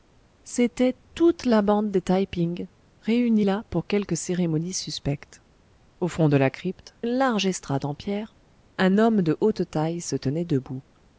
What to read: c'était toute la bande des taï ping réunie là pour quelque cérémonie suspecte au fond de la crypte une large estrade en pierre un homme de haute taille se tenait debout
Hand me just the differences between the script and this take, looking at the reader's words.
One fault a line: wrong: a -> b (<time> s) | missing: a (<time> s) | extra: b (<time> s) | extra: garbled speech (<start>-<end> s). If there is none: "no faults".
no faults